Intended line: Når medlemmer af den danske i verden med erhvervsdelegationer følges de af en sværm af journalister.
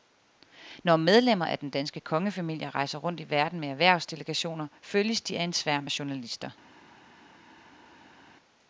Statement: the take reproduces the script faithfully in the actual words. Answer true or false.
false